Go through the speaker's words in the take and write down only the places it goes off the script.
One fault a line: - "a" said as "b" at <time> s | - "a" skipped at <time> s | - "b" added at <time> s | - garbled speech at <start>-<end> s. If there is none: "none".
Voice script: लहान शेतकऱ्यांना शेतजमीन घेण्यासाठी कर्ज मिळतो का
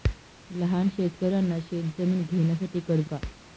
- "मिळतो" skipped at 3.1 s